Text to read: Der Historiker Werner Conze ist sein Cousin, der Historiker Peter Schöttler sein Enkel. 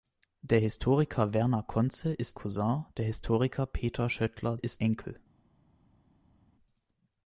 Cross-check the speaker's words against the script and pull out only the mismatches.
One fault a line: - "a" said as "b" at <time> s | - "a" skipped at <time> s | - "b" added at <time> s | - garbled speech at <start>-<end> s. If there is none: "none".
- "sein" skipped at 2.4 s
- "sein" said as "ist" at 4.6 s